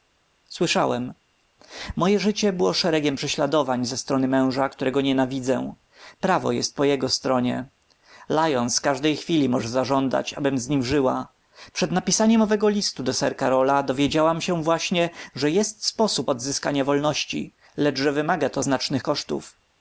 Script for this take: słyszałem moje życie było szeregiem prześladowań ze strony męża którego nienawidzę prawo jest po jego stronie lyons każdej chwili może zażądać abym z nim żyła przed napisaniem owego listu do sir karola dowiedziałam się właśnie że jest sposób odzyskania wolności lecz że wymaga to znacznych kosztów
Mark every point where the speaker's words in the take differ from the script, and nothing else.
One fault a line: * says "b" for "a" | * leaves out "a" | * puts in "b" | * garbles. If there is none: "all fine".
all fine